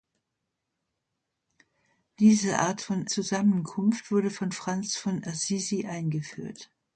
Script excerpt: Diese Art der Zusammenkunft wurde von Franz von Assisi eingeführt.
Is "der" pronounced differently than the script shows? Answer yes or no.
yes